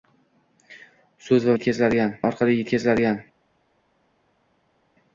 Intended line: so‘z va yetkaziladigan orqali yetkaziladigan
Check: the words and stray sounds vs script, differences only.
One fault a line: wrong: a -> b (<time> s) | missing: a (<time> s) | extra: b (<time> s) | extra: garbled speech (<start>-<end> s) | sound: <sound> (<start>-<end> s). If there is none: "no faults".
no faults